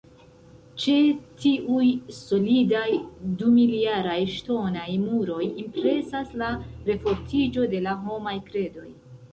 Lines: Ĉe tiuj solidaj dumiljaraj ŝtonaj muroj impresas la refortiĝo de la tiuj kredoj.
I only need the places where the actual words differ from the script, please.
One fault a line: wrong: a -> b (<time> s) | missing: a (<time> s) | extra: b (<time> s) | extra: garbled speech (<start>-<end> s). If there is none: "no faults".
wrong: tiuj -> homaj (8.1 s)